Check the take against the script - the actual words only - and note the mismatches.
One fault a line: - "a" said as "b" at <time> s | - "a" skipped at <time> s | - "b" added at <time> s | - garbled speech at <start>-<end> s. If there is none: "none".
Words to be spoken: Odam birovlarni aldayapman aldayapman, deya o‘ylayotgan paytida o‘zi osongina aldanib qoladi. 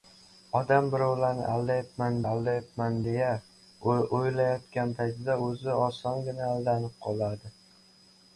none